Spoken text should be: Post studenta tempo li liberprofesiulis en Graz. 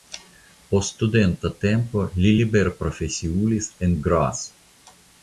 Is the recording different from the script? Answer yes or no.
no